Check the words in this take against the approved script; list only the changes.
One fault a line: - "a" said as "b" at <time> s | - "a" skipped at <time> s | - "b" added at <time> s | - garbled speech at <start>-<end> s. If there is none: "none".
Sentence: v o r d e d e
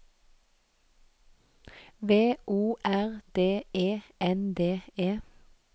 - "n" added at 4.2 s